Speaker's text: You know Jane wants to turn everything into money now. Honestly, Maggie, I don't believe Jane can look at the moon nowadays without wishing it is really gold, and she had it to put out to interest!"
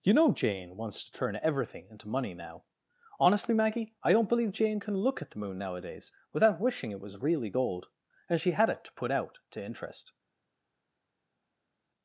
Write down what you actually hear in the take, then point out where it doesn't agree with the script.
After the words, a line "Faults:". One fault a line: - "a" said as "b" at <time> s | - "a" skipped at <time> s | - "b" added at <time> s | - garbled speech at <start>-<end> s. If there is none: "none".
You know Jane wants to turn everything into money now. Honestly, Maggie, I don't believe Jane can look at the moon nowadays without wishing it was really gold, and she had it to put out to interest!"
Faults:
- "is" said as "was" at 7.0 s